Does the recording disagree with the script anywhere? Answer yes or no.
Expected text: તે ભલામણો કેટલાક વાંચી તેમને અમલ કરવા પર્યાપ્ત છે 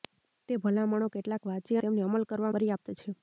no